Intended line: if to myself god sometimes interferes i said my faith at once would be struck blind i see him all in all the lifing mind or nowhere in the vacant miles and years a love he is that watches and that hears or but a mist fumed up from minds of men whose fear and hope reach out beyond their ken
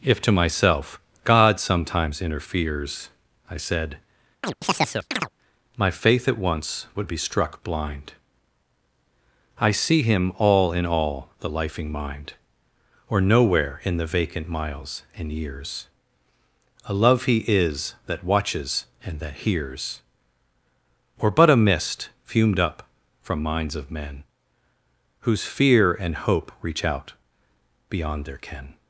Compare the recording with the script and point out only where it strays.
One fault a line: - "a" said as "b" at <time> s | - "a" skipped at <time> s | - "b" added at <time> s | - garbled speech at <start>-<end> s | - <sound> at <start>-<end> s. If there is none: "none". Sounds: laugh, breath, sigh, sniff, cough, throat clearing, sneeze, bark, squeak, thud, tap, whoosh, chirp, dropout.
- chirp at 4.4-5.3 s